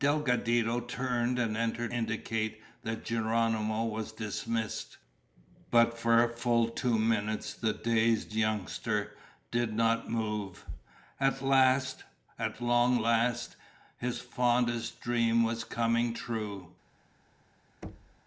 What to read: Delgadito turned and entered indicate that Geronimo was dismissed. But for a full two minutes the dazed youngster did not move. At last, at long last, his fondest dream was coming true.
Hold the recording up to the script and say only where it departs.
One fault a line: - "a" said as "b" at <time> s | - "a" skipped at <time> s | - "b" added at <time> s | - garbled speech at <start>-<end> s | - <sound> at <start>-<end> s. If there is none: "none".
- thud at 17.8-18.2 s